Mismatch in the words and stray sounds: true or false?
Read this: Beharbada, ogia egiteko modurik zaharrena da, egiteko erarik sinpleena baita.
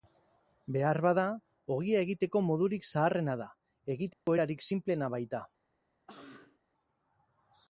true